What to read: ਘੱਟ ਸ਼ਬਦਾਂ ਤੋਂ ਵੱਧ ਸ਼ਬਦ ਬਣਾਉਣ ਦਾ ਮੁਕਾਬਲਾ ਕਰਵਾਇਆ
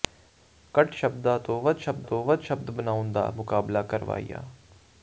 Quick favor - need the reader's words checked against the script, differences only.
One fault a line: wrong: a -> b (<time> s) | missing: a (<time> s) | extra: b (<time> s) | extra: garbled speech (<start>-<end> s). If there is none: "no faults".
extra: ਤੋਂ ਵੱਧ ਸ਼ਬਦ (2.0 s)